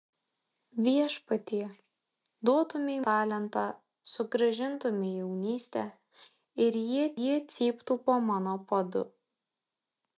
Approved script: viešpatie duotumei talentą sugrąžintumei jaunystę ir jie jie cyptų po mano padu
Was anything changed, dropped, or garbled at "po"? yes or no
no